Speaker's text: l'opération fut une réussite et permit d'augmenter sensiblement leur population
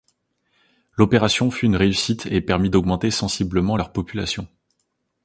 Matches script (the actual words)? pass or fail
pass